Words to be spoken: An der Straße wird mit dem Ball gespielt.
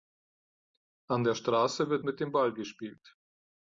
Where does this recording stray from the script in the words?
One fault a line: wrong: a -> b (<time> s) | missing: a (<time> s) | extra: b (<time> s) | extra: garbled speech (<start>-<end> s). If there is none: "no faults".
no faults